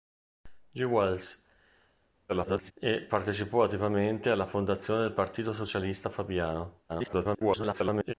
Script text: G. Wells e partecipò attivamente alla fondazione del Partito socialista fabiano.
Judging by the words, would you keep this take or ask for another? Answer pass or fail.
fail